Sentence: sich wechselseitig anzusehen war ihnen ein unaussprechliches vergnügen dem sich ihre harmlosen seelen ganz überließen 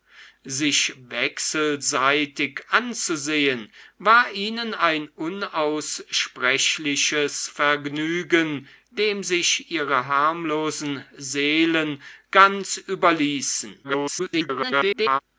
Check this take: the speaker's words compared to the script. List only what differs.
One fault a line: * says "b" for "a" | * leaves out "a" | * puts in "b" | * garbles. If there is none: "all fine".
* garbles